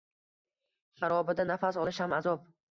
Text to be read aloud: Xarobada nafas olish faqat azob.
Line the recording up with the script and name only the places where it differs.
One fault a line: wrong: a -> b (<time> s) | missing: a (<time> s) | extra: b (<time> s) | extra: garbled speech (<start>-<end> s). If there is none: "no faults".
wrong: faqat -> ham (2.1 s)